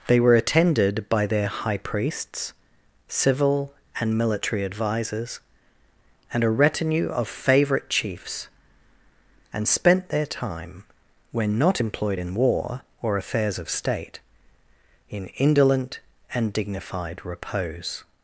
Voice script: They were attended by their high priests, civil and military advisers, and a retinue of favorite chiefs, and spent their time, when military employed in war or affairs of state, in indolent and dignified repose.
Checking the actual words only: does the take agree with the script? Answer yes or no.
no